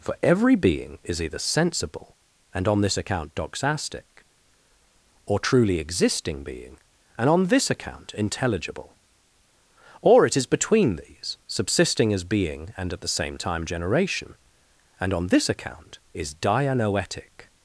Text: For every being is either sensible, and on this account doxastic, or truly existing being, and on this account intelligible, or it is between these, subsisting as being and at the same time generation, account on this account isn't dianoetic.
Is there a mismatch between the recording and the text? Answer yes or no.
yes